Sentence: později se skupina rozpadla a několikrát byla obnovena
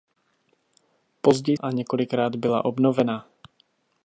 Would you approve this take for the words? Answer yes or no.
no